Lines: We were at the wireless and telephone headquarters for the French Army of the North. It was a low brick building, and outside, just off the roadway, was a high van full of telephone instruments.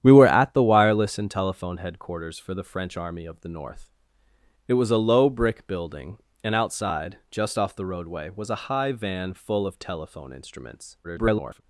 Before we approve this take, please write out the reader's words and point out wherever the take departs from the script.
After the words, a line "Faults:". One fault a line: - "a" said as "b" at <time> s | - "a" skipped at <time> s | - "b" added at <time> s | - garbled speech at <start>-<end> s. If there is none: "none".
We were at the wireless and telephone headquarters for the French Army of the North. It was a low brick building, and outside, just off the roadway, was a high van full of telephone instruments. [garbled]
Faults:
- garbled speech at 11.0-11.6 s